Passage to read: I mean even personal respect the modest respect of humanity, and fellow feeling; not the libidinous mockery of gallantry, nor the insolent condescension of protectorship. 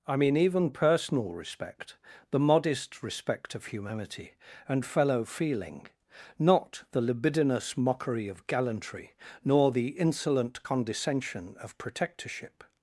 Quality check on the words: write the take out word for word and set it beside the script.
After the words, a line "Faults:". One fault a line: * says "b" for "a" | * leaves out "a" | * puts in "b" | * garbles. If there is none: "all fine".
I mean even personal respect the modest respect of humanity, and fellow feeling; not the libidinous mockery of gallantry, nor the insolent condescension of protectorship.
Faults:
all fine